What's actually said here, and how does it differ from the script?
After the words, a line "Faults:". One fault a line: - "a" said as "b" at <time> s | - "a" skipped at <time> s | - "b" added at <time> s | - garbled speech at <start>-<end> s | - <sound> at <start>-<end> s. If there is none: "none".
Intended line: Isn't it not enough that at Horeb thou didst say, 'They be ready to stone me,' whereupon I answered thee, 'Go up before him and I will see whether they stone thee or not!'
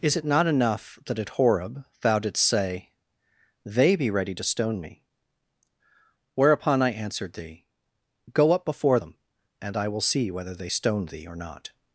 Is it not enough that at Horeb thou didst say, 'They be ready to stone me,' whereupon I answered thee, 'Go up before them and I will see whether they stone thee or not!'
Faults:
- "Isn't" said as "Is" at 0.0 s
- "him" said as "them" at 9.0 s